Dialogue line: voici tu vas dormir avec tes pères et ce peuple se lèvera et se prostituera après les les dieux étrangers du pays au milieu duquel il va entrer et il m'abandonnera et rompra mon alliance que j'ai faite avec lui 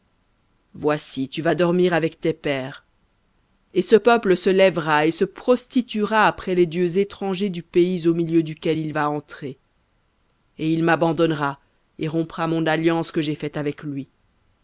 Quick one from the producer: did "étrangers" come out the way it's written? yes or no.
yes